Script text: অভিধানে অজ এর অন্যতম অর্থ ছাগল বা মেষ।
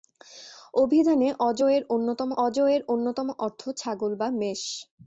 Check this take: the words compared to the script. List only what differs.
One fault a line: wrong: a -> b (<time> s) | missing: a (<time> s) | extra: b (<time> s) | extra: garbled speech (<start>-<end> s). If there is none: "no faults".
extra: অজ এর অন্যতম (2.4 s)